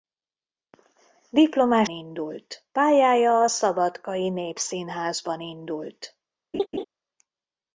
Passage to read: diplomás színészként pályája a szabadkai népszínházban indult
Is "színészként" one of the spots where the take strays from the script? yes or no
yes